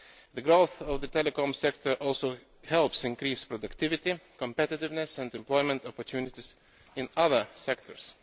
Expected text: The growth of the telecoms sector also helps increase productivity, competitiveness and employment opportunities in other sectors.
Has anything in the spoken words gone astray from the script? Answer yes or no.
no